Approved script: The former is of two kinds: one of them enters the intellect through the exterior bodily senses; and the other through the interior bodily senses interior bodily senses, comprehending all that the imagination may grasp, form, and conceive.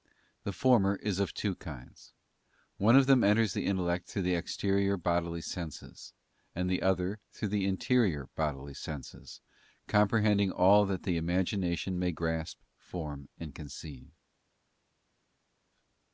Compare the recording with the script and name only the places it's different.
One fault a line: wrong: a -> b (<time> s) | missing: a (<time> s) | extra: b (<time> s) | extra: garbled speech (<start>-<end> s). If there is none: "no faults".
missing: interior bodily senses (9.4 s)